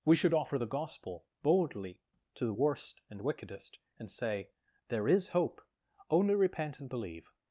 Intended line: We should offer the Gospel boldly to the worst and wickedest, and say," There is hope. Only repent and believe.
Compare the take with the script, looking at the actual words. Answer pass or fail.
pass